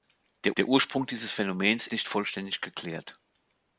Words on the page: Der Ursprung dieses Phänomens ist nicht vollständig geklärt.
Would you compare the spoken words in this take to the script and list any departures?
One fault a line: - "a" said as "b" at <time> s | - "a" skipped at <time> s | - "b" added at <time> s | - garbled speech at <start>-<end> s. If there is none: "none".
- "der" added at 0.6 s
- "ist" skipped at 1.9 s